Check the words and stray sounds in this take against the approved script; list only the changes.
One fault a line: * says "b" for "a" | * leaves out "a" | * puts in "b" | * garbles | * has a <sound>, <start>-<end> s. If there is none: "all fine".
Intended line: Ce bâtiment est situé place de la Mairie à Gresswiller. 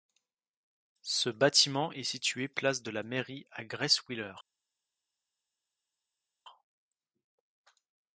all fine